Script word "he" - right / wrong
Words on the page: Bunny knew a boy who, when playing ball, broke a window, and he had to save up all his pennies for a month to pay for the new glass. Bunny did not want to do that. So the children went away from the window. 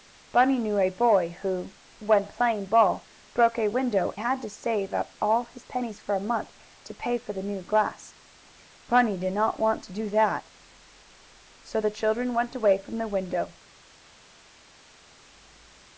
wrong